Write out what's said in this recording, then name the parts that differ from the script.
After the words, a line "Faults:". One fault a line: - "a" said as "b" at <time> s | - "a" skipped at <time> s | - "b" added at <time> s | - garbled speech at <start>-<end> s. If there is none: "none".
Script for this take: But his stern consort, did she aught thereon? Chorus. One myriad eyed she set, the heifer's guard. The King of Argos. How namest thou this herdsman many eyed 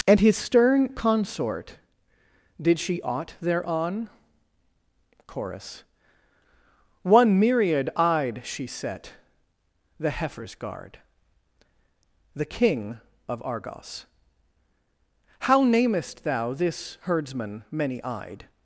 And his stern consort, did she aught thereon? Chorus. One myriad eyed she set, the heifer's guard. The King of Argos. How namest thou this herdsman many eyed
Faults:
- "But" said as "And" at 0.1 s